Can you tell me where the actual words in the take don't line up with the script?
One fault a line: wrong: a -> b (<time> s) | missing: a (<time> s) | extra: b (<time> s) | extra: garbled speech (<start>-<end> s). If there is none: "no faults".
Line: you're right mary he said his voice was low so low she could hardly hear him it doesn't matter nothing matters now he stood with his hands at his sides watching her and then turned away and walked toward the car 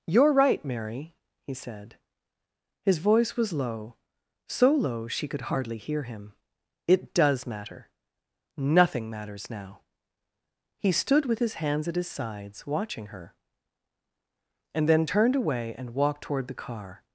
wrong: doesn't -> does (7.1 s)